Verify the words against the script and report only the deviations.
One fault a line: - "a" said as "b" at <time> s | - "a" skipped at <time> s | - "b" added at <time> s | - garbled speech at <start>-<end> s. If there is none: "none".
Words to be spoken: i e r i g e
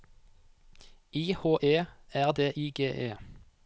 - "h" added at 1.3 s
- "d" added at 2.3 s